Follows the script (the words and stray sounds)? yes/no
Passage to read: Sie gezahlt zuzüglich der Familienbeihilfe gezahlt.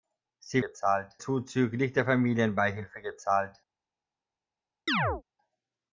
no